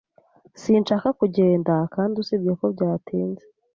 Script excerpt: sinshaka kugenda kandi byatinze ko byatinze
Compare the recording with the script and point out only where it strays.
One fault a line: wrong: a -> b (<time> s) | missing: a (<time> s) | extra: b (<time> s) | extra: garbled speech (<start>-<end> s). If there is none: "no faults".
wrong: byatinze -> usibye (2.2 s)